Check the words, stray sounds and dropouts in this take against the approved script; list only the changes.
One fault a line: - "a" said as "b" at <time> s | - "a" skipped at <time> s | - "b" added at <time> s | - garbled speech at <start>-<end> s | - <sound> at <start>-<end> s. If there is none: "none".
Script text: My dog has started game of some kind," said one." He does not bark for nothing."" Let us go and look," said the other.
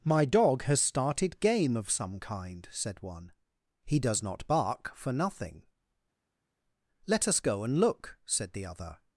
none